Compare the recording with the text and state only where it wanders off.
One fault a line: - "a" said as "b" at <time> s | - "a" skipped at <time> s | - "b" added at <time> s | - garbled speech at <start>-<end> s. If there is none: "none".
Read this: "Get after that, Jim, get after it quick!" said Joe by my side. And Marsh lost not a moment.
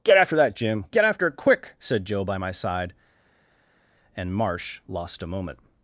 - "not" skipped at 5.2 s